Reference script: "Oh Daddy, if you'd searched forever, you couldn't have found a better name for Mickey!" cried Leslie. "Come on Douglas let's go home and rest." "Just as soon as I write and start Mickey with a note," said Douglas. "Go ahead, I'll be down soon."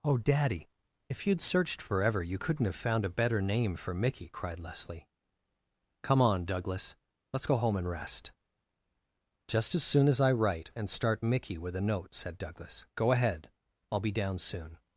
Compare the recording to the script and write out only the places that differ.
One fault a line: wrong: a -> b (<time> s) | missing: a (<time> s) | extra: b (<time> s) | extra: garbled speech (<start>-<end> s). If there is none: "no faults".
no faults